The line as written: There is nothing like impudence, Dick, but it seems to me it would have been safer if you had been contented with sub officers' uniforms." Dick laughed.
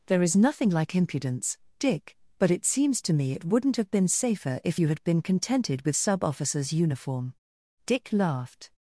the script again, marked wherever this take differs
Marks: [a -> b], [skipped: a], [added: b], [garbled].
There is nothing like impudence, Dick, but it seems to me it [would -> wouldn't] have been safer if you had been contented with sub officers' [uniforms." -> uniform] Dick laughed.